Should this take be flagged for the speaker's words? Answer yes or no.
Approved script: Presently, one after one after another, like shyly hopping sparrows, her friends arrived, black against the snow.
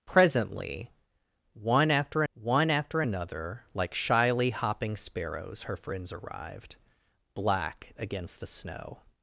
no